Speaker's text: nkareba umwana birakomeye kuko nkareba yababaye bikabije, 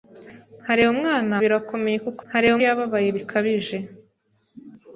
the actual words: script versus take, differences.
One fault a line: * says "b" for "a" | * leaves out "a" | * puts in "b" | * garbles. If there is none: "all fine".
all fine